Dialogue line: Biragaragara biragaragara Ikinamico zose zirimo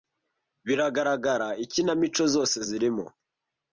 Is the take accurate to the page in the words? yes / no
no